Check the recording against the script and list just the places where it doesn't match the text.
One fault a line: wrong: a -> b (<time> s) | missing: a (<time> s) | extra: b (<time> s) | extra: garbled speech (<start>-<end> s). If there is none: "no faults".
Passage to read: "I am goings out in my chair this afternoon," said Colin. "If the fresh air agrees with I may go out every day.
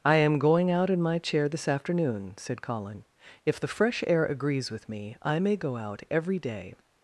wrong: goings -> going (0.4 s)
extra: me (4.9 s)